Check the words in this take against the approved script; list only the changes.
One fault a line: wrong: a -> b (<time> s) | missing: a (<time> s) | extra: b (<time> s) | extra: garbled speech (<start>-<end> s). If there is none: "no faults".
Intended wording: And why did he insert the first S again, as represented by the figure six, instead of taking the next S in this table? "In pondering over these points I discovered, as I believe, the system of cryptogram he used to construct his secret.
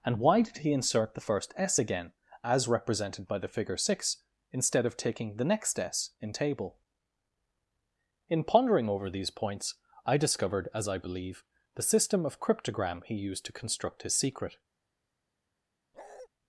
missing: this (6.3 s)